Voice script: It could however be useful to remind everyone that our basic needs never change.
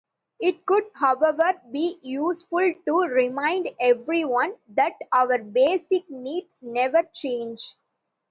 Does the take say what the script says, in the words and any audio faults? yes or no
yes